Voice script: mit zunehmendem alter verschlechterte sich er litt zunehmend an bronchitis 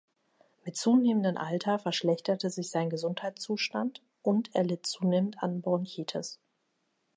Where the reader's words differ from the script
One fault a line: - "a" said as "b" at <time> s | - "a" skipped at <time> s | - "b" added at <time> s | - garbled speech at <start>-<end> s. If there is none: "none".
- "sein gesundheitszustand und" added at 2.7 s